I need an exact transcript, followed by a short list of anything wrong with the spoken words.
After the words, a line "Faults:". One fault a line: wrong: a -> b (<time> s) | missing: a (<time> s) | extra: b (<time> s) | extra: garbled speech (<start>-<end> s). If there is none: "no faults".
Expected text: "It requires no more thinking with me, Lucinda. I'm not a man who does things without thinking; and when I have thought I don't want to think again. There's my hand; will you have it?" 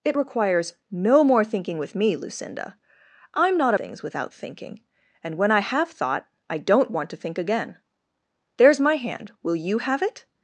"It requires no more thinking with me, Lucinda. I'm not a things without thinking; and when I have thought I don't want to think again. There's my hand; will you have it?"
Faults:
missing: man who does (3.8 s)